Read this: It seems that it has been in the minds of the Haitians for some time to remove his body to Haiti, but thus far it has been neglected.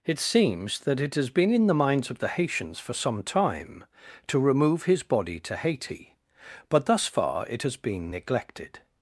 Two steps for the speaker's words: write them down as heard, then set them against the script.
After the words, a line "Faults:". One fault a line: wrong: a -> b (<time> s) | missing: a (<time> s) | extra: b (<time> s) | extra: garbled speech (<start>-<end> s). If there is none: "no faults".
It seems that it has been in the minds of the Haitians for some time to remove his body to Haiti, but thus far it has been neglected.
Faults:
no faults